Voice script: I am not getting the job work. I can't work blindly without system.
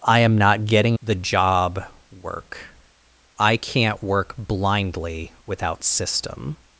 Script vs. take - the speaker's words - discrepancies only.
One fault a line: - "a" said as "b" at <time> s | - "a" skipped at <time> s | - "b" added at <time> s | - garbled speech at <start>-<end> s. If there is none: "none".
none